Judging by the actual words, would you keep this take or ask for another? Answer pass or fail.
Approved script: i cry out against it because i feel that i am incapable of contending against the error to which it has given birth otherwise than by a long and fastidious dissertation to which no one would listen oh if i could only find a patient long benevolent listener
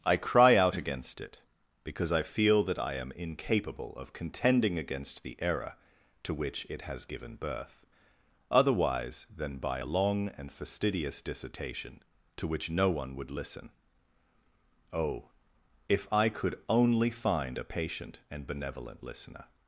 fail